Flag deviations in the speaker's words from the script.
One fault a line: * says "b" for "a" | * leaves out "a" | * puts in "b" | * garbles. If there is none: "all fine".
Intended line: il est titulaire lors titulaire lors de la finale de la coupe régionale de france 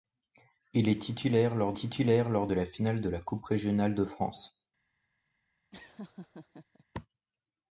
all fine